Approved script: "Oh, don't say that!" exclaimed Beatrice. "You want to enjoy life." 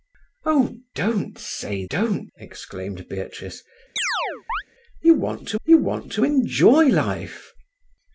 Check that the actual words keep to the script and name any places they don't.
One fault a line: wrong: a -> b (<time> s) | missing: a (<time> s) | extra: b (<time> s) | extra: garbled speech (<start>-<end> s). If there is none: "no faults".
wrong: that -> don't (1.9 s)
extra: you want to (5.7 s)